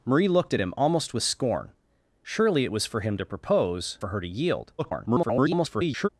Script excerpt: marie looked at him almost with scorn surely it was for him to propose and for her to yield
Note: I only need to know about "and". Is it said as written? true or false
false